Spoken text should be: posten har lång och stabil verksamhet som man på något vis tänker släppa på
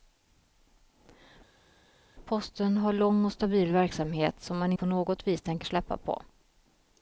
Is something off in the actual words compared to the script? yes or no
no